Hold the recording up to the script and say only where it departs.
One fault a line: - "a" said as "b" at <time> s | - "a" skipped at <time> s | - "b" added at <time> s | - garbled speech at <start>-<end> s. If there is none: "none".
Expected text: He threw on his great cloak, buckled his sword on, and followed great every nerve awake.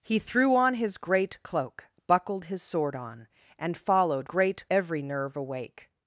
none